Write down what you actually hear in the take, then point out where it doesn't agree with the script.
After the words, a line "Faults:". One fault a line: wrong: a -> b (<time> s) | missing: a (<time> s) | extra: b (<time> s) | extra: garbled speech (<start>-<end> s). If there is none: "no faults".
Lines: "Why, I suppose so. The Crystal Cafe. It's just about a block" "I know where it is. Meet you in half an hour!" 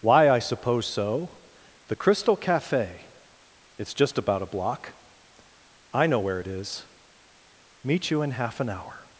"Why, I suppose so. The Crystal Cafe. It's just about a block" "I know where it is. Meet you in half an hour!"
Faults:
no faults